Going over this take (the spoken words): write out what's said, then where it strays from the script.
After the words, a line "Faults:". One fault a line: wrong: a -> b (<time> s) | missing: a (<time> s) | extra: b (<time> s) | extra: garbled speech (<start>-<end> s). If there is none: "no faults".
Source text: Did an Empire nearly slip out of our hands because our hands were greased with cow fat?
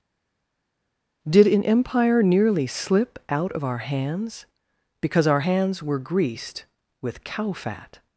Did an Empire nearly slip out of our hands because our hands were greased with cow fat?
Faults:
no faults